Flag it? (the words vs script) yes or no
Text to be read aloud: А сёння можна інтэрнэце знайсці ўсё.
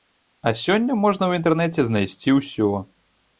yes